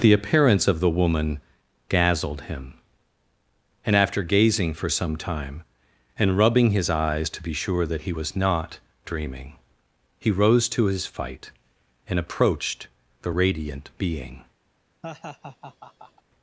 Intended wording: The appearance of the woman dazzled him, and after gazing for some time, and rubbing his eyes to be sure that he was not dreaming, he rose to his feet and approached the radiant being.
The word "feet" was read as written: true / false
false